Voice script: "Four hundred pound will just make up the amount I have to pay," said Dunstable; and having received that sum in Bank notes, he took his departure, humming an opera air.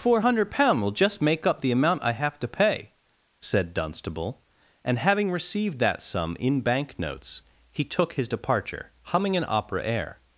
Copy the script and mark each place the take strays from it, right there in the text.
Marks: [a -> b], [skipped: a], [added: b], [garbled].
"Four hundred pound will just make up the amount I have to pay," said Dunstable; and having received that sum in Bank notes, he took his departure, humming an opera air.